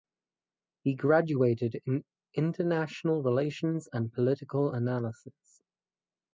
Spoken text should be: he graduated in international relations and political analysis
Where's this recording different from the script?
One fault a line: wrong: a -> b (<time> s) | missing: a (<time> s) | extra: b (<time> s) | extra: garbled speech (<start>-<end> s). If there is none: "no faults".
no faults